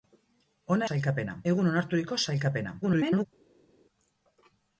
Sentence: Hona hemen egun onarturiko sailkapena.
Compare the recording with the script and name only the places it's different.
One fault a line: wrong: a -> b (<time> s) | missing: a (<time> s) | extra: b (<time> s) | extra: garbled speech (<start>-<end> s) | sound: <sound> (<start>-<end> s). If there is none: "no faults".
wrong: hemen -> sailkapena (0.9 s)
extra: garbled speech (2.8-3.3 s)